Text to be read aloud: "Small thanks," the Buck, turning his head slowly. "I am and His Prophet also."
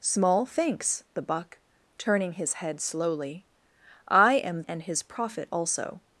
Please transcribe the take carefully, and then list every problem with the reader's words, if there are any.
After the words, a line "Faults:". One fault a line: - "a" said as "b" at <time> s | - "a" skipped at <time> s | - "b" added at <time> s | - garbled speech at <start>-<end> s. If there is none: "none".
"Small thanks," the Buck, turning his head slowly. "I am and His Prophet also."
Faults:
none